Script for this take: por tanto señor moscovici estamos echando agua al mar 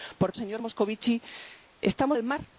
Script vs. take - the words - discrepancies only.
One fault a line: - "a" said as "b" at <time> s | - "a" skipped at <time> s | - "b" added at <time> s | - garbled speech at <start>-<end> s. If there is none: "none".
- "tanto" skipped at 0.3 s
- "echando agua" skipped at 2.2 s